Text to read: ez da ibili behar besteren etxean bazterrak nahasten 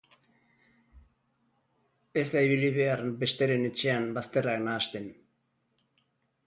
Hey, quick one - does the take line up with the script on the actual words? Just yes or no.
yes